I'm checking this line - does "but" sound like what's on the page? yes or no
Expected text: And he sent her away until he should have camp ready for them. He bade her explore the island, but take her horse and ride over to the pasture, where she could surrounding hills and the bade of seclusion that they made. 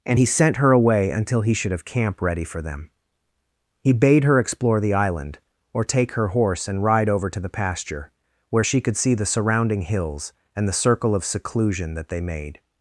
no